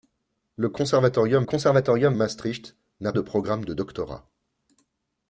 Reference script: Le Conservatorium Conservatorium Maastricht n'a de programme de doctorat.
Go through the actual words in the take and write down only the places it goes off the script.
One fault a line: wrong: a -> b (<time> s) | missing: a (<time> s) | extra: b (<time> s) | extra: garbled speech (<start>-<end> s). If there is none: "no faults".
no faults